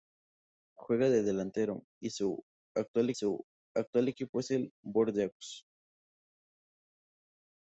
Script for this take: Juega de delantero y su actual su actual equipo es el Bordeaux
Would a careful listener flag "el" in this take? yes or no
no